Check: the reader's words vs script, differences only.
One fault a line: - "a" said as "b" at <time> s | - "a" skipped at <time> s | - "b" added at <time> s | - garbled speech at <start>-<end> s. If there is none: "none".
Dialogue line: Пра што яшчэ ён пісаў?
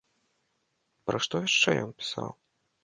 none